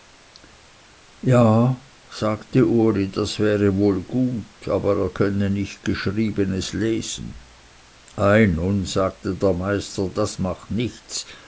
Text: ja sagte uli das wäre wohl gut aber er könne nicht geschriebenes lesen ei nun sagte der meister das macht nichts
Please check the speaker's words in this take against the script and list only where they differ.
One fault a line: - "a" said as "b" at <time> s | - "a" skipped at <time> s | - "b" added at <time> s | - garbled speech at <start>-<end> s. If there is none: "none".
none